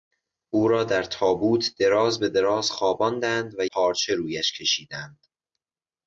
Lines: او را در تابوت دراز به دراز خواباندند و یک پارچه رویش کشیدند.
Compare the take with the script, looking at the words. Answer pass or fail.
fail